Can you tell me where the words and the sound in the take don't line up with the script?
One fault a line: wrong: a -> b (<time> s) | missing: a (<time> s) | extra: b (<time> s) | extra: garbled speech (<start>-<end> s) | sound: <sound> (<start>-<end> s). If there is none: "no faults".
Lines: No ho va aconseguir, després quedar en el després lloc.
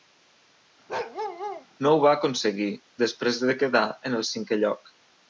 sound: bark (0.9-1.7 s)
extra: de (3.5 s)
wrong: després -> cinquè (4.4 s)